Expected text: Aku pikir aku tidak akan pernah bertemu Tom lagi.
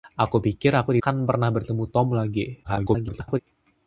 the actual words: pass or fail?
fail